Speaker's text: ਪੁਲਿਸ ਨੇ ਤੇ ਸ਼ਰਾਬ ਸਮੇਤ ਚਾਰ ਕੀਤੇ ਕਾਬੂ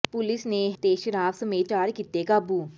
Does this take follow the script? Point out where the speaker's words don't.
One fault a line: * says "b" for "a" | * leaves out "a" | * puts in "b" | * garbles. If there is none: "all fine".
all fine